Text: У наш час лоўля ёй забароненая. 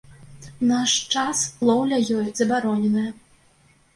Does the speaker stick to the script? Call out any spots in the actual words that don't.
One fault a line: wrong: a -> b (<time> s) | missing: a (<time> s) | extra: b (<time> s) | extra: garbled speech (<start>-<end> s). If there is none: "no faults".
no faults